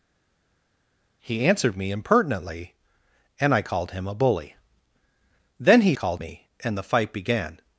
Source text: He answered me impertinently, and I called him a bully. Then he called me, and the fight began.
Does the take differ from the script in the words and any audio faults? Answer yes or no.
no